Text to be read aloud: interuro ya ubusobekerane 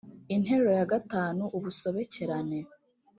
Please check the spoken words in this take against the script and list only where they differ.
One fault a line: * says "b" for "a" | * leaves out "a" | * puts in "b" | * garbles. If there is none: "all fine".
* puts in "gatanu"